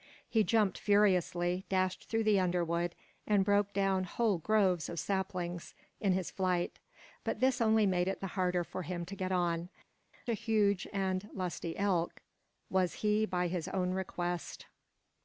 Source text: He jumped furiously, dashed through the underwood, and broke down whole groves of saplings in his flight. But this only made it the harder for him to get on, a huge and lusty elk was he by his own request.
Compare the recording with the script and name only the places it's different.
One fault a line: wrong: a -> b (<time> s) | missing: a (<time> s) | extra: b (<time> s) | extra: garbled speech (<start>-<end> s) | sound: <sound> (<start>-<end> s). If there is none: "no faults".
no faults